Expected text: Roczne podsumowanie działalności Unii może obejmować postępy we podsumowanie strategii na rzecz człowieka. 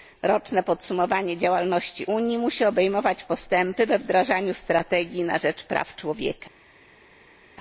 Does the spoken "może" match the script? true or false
false